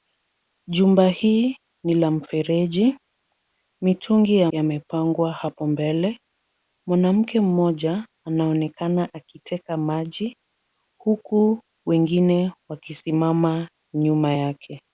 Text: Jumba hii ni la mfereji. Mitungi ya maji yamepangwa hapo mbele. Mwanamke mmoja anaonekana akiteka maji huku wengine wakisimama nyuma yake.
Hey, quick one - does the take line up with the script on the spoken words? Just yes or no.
no